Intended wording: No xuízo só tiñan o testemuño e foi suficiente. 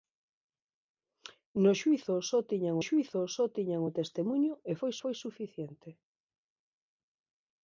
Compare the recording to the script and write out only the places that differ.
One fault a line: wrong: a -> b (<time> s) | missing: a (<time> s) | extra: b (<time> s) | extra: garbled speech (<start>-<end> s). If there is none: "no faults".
extra: xuízo só tiñan (2.9 s)
extra: foi (5.0 s)